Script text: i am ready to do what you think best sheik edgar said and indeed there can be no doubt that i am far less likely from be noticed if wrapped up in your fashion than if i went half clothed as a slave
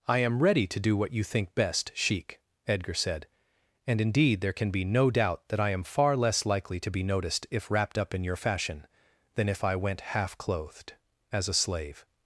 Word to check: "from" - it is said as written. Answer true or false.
false